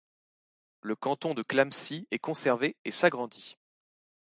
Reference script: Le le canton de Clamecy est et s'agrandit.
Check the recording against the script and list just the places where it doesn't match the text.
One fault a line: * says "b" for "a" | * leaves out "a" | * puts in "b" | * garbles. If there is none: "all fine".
* leaves out "le"
* puts in "conservé"